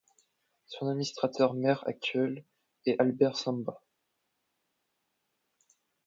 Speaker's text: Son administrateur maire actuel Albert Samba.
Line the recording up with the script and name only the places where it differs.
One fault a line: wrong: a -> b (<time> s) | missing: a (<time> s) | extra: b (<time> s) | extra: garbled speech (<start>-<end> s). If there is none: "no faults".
extra: est (2.9 s)